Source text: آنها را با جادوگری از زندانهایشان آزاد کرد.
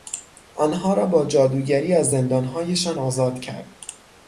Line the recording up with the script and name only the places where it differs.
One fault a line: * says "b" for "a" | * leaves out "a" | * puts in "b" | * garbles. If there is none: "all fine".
all fine